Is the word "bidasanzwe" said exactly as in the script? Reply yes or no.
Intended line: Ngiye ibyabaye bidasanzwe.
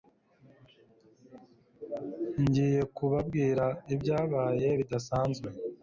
yes